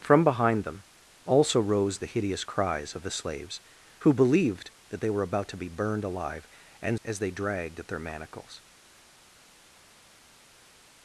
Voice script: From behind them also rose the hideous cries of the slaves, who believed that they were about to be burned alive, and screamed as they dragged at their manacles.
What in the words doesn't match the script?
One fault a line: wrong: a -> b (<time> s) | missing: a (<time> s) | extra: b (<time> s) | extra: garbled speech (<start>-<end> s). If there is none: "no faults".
missing: screamed (7.0 s)